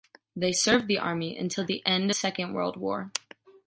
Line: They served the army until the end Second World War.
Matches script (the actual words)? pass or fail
pass